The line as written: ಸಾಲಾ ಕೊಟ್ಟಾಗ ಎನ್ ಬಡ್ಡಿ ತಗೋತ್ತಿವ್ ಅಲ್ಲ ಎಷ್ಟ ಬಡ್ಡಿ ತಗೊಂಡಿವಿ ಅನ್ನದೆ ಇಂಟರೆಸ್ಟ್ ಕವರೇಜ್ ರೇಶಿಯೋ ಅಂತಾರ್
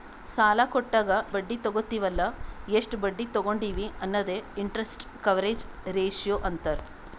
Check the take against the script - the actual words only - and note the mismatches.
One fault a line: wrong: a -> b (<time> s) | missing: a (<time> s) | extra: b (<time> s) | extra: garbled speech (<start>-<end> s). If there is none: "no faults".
missing: ಎನ್ (1.1 s)